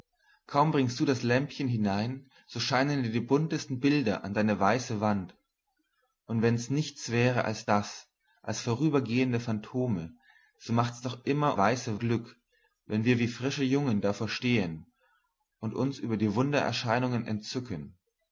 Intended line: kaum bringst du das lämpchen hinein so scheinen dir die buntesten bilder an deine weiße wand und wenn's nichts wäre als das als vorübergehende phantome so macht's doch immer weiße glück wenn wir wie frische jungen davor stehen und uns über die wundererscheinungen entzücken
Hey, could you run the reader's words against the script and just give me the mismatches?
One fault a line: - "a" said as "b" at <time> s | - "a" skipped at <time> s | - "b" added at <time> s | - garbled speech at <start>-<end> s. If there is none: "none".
none